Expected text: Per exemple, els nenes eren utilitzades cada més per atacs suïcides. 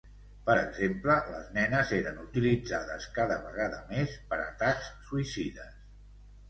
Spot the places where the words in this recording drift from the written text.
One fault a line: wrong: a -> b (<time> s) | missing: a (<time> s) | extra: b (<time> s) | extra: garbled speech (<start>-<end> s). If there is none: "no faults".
wrong: els -> les (1.3 s)
extra: vegada (3.5 s)